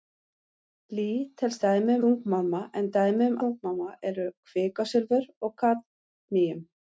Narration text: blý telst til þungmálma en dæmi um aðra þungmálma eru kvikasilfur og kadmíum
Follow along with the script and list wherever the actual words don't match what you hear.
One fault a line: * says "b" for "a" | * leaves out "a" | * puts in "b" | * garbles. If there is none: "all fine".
* says "dæmi" for "til"
* leaves out "aðra"